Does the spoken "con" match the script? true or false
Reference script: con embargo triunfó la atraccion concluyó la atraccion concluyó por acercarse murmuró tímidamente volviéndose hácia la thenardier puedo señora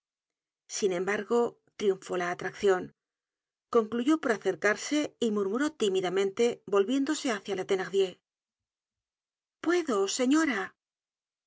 false